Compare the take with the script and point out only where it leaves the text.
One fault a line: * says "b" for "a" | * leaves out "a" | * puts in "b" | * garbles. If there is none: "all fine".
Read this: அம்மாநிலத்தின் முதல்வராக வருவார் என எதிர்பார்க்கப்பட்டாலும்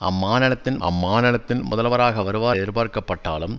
* puts in "அம்மாநிலத்தின்"
* leaves out "என"